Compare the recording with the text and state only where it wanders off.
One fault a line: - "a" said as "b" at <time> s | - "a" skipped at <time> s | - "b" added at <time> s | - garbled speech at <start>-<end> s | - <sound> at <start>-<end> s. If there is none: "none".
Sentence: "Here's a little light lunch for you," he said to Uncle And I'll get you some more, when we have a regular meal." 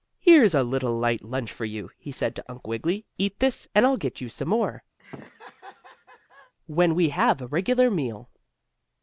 - "Wiggily Eat this" added at 2.7 s
- laugh at 5.0-6.5 s